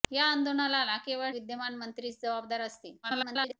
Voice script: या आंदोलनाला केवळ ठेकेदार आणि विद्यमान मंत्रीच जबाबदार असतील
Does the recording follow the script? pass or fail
fail